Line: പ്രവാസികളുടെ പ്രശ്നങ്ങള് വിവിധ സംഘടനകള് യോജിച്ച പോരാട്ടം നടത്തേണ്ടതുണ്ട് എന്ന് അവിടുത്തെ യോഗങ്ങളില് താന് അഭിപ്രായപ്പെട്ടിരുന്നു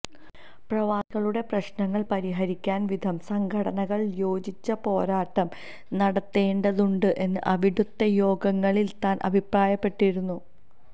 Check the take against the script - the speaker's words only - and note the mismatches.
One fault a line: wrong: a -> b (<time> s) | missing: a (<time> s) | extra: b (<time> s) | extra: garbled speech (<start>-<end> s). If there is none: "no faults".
extra: പരിഹരിക്കാന് (2.1 s)